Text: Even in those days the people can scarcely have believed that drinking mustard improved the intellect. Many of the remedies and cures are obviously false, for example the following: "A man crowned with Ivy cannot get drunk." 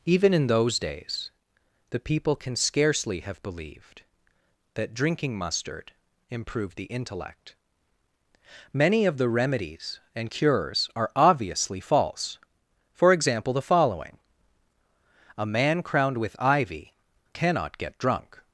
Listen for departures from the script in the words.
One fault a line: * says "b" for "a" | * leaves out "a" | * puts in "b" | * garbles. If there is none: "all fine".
all fine